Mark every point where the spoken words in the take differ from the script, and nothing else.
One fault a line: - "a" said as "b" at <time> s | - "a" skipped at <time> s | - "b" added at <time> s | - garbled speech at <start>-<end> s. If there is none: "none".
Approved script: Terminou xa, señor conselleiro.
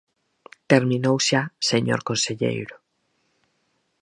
none